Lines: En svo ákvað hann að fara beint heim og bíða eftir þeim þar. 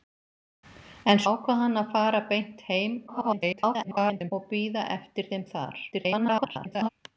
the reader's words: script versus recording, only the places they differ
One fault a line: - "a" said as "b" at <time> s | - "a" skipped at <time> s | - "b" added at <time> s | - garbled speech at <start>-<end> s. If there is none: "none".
- "svo" skipped at 1.2 s
- garbled speech at 3.1-4.3 s
- garbled speech at 5.9-6.9 s